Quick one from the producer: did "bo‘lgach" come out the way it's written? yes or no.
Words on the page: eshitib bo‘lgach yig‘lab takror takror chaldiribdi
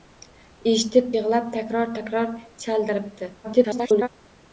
no